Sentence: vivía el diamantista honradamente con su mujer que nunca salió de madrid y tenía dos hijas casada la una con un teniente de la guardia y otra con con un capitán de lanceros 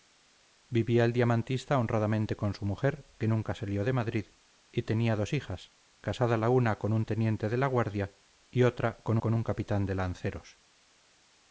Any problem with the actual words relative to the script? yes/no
no